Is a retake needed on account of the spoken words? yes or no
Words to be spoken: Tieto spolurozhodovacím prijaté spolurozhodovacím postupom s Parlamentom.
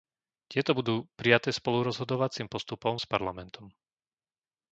yes